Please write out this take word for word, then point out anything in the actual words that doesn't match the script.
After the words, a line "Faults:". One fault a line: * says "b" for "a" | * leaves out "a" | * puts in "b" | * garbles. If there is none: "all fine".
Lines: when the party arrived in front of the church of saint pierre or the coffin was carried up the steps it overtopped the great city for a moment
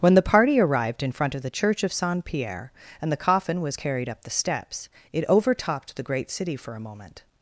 when the party arrived in front of the church of saint pierre and the coffin was carried up the steps it overtopped the great city for a moment
Faults:
* says "and" for "or"